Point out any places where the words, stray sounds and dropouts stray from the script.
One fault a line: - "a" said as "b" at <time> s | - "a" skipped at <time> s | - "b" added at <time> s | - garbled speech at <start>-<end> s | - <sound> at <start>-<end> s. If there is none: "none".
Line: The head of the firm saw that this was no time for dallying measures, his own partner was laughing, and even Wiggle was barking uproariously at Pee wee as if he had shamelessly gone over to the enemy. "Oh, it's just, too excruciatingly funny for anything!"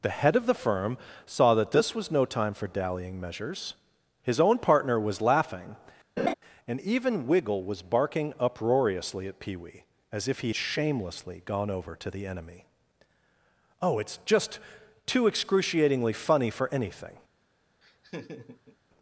- laugh at 6.2-6.3 s
- "had" skipped at 10.5 s
- laugh at 17.8-18.8 s